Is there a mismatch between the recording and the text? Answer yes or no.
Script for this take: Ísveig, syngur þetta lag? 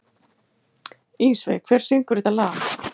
yes